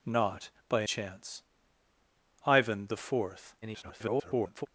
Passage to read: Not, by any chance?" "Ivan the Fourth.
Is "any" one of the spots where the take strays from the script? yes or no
yes